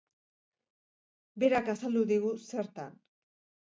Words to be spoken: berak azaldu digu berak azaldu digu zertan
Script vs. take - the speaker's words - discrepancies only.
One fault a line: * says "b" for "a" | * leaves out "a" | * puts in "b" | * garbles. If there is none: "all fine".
* leaves out "berak azaldu digu"